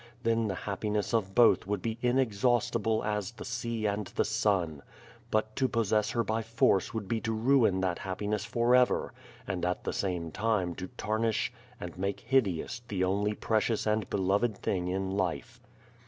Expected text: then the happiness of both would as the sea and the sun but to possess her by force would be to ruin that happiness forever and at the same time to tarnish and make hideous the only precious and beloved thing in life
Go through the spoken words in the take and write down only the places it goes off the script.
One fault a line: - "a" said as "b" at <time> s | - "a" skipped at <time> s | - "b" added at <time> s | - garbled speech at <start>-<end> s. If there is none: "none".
- "be inexhaustible" added at 1.8 s